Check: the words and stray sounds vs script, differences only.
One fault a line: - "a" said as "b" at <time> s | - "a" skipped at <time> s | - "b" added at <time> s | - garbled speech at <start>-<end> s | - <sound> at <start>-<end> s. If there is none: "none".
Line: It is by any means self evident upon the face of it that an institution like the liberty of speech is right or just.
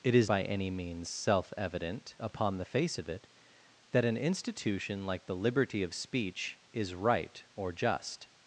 none